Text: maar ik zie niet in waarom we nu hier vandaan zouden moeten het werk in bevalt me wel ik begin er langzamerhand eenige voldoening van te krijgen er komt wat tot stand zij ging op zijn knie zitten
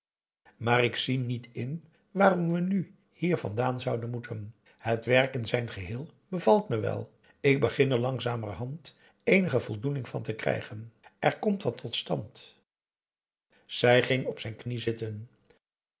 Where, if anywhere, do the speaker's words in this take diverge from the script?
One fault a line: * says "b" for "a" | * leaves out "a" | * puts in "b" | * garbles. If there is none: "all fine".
* puts in "zijn geheel"